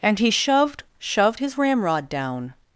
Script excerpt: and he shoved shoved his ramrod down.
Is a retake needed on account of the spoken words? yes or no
no